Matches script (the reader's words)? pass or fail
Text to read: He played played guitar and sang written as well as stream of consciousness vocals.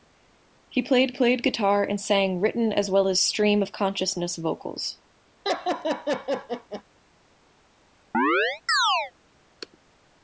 pass